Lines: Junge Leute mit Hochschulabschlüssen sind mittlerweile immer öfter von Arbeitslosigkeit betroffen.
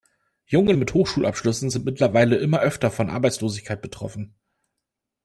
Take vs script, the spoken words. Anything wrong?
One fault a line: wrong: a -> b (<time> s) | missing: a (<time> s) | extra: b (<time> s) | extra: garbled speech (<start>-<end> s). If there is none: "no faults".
missing: Leute (0.7 s)